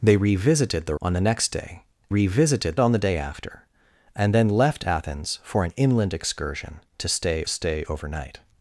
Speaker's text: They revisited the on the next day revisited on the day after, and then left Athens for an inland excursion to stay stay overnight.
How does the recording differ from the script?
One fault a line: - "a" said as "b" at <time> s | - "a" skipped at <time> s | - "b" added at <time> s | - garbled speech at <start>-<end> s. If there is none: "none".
none